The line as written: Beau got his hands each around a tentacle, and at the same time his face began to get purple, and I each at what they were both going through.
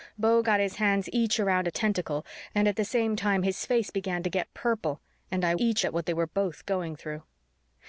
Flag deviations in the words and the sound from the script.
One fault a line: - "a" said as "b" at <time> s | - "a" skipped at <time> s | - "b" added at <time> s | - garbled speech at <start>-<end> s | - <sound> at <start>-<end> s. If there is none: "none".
none